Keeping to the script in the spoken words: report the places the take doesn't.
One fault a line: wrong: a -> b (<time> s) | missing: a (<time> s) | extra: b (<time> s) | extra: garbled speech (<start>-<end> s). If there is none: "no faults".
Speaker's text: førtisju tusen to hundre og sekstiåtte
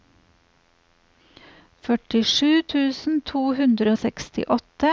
no faults